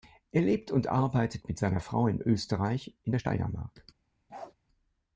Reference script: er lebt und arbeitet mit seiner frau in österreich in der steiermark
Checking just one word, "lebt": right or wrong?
right